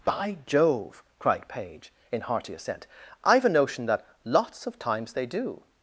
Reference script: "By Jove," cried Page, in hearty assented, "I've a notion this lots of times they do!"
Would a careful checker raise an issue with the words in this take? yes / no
yes